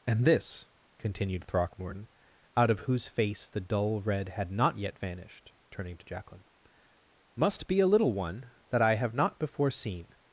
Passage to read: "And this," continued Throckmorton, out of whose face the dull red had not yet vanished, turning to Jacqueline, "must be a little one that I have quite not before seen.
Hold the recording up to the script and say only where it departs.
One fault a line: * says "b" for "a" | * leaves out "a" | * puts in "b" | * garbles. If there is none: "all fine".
* leaves out "quite"